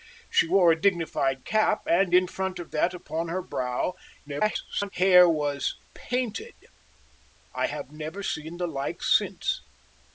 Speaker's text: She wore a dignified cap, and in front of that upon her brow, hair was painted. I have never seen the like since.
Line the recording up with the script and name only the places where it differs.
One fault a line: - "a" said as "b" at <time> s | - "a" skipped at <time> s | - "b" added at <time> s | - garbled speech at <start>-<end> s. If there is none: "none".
- garbled speech at 4.3-4.9 s